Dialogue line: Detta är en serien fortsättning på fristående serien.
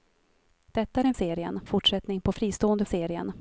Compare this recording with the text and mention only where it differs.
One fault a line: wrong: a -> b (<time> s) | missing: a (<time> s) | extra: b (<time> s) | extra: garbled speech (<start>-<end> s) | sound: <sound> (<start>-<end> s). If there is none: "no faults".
no faults